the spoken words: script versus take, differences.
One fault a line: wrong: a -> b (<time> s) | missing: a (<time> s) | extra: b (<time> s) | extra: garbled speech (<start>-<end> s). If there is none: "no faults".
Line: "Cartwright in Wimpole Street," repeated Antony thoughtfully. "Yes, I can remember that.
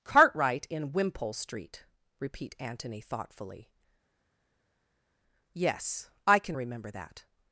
wrong: repeated -> repeat (2.2 s)